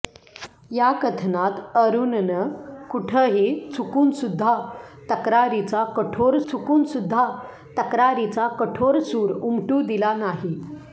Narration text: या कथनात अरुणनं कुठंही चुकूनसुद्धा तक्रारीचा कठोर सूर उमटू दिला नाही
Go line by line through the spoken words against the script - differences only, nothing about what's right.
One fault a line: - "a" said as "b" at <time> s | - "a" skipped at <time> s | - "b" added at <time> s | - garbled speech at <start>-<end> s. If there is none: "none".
- "चुकूनसुद्धा तक्रारीचा कठोर" added at 6.5 s